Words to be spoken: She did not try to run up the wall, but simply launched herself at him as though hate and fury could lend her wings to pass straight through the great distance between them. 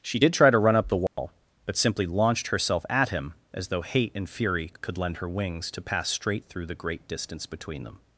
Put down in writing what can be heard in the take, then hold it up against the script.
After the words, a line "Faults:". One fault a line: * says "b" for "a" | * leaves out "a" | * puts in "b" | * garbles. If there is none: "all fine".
She did try to run up the wall, but simply launched herself at him as though hate and fury could lend her wings to pass straight through the great distance between them.
Faults:
* leaves out "not"